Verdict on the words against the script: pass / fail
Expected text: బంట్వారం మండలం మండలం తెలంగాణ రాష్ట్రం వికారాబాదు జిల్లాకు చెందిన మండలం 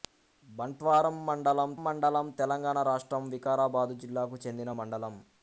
pass